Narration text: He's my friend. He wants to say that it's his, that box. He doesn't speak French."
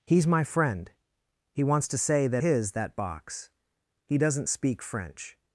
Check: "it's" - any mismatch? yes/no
yes